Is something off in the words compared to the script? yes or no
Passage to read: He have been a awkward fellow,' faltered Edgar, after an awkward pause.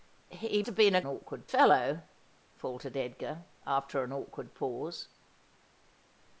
no